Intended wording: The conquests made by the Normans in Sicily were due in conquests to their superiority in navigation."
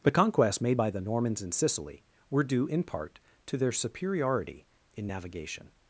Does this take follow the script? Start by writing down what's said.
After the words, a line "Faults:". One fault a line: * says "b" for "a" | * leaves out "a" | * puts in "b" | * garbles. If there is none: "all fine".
The conquests made by the Normans in Sicily were due in part to their superiority in navigation."
Faults:
* says "part" for "conquests"